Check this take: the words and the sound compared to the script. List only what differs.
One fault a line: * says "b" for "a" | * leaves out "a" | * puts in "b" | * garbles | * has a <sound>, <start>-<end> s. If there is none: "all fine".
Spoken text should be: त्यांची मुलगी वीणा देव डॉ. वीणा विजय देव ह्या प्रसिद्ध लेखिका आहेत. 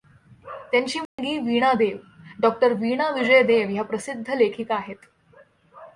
* has a dropout, 1.1-1.2 s